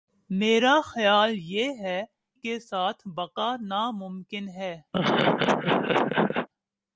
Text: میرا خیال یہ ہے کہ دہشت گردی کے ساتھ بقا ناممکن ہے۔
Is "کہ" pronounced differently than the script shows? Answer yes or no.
yes